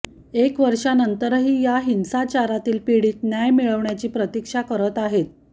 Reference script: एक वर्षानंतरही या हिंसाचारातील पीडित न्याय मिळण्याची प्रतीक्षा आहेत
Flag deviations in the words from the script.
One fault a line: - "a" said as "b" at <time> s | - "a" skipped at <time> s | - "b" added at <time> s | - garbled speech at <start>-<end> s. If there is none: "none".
- "करत" added at 4.6 s